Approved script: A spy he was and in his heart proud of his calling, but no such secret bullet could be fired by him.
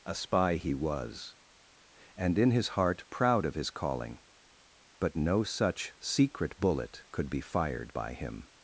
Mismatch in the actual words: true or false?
false